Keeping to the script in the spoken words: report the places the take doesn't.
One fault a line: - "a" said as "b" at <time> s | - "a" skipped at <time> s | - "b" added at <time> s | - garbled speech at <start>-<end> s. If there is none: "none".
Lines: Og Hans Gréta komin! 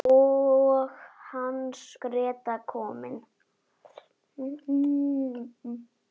none